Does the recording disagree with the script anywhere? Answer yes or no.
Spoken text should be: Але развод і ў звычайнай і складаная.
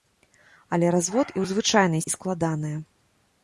no